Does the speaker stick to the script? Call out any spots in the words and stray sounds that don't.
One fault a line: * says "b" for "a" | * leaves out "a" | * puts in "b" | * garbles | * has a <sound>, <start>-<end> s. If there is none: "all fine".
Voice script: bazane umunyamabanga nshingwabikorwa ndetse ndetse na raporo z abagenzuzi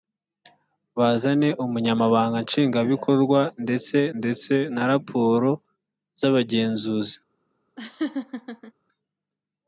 * has a laugh, 7.8-8.7 s